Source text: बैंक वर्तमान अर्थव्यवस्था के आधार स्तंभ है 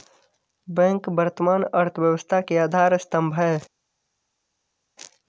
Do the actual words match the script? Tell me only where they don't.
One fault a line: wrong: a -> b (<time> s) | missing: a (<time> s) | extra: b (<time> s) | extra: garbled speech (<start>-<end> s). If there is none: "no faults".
no faults